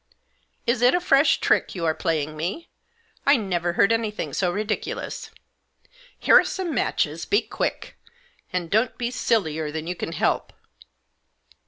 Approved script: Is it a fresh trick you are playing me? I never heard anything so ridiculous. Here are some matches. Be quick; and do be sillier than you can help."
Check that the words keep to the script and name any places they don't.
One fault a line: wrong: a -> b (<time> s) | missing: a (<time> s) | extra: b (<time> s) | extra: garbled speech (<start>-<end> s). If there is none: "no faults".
wrong: do -> don't (8.7 s)